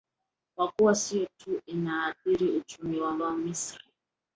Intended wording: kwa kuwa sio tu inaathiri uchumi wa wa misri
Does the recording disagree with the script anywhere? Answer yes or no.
no